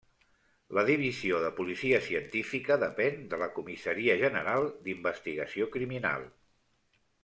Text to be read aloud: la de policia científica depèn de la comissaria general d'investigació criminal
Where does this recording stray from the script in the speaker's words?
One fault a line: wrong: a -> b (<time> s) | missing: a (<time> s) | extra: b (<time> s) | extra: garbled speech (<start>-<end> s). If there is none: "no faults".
extra: divisió (0.9 s)